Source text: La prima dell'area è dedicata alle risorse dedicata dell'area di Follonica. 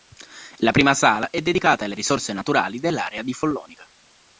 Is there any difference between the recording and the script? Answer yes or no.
yes